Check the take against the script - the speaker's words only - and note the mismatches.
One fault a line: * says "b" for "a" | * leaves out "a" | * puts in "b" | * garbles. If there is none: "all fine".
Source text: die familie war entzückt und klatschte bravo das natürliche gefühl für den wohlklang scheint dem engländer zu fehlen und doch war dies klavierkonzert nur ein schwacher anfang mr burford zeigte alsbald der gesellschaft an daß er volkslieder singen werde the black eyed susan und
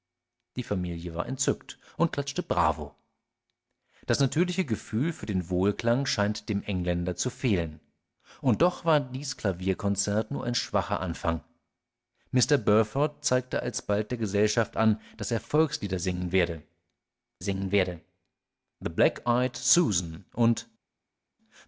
* puts in "singen werde"